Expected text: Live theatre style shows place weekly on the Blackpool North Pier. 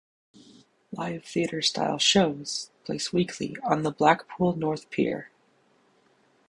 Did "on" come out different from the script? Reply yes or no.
no